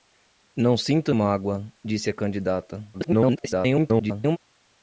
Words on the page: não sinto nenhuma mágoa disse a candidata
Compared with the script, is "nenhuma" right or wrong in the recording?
wrong